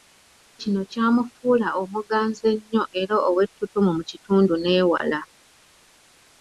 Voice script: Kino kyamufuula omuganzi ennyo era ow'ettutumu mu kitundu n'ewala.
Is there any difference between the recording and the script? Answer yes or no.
no